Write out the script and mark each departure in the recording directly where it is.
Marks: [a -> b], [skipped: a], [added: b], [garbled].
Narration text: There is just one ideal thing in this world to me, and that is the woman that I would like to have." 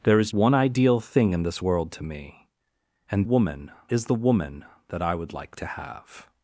There is [skipped: just] one ideal thing in this world to me, and [that -> woman] is the woman that I would like to have."